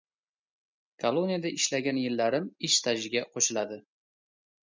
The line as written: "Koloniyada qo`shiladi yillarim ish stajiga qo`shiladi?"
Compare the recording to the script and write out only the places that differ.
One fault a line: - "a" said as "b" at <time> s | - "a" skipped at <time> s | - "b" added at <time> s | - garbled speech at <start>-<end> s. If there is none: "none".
- "qo`shiladi" said as "ishlagan" at 1.6 s